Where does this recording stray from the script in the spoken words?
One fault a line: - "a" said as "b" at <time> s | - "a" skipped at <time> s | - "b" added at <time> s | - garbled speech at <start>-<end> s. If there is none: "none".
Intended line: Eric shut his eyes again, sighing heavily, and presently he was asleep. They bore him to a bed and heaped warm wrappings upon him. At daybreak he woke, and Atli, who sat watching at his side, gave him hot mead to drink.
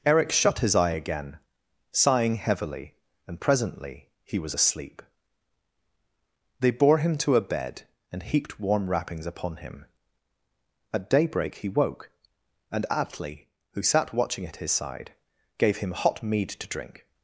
- "eyes" said as "eye" at 0.8 s